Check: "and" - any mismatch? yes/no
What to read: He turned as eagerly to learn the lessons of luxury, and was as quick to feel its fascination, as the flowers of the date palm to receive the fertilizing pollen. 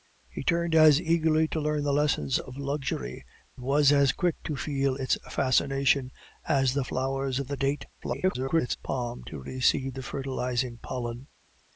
yes